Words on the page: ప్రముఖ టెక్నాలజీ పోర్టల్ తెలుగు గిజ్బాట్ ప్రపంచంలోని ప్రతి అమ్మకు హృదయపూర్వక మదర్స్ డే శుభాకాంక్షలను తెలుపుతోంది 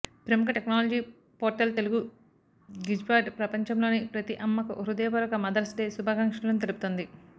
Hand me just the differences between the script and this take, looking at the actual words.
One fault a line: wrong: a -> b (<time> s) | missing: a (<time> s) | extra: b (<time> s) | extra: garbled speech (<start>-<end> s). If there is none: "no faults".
no faults